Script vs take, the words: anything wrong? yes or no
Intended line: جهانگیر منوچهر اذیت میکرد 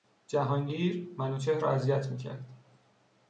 yes